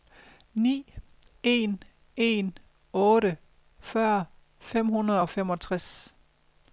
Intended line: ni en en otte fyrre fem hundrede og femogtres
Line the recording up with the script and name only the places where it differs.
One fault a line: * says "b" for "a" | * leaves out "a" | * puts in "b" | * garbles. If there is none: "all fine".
all fine